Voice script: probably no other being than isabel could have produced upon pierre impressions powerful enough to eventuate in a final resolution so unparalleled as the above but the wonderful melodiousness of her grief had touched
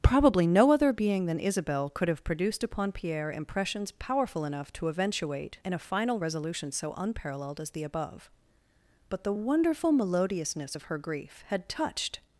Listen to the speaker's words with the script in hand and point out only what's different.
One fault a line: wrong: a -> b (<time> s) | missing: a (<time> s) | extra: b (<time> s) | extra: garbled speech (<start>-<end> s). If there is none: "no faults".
no faults